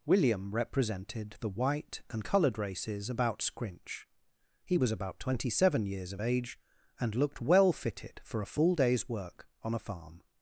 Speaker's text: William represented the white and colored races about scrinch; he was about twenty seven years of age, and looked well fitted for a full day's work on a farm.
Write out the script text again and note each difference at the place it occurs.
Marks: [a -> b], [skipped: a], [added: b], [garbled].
William represented the white and colored races about scrinch; he was about twenty seven years of age, and looked well fitted for a full day's work on a farm.